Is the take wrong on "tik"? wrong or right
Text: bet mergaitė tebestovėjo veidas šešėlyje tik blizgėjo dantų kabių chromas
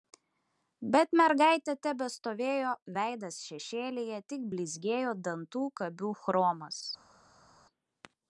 right